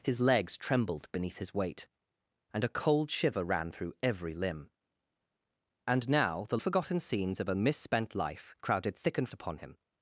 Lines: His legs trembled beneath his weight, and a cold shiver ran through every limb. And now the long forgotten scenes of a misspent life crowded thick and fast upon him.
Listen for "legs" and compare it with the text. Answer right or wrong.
right